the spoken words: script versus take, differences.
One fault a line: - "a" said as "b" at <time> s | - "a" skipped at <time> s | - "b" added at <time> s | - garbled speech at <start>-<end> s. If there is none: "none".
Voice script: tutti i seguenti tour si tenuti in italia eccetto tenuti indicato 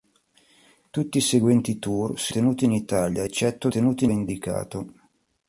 none